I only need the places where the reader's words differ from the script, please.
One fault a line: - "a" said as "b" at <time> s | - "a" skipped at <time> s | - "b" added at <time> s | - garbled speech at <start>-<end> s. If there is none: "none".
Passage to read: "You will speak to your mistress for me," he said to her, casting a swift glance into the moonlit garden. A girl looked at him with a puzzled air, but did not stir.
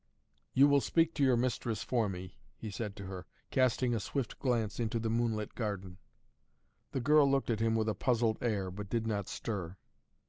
- "A" said as "The" at 6.9 s